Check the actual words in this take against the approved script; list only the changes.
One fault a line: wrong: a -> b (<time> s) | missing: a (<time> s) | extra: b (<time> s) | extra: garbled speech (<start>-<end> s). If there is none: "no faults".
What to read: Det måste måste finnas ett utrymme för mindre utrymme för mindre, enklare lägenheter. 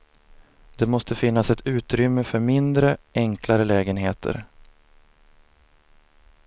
missing: måste (1.1 s)
missing: utrymme för mindre (3.0 s)